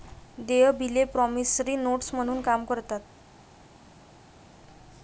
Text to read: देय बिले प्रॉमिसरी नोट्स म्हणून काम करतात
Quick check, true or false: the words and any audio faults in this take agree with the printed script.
true